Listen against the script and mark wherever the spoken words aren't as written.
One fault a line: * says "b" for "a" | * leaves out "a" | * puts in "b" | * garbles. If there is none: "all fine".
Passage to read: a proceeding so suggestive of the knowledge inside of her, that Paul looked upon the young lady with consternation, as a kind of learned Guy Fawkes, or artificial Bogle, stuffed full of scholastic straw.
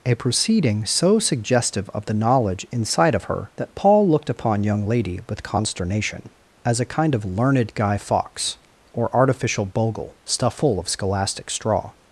* leaves out "the"